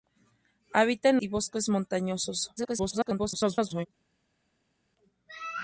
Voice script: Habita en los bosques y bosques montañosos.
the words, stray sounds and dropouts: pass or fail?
fail